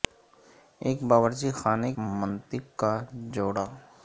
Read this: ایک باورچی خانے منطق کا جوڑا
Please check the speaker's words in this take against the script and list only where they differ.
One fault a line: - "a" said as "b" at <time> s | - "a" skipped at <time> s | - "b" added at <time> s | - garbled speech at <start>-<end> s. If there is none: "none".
none